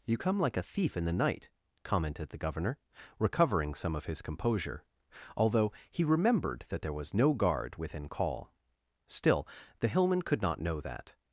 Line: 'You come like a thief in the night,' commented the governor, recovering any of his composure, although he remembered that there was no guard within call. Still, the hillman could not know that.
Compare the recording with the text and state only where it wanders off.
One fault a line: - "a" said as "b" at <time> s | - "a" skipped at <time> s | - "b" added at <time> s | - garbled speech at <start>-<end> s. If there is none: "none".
- "any" said as "some" at 3.7 s